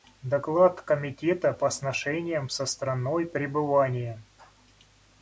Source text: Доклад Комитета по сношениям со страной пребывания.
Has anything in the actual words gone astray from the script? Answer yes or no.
no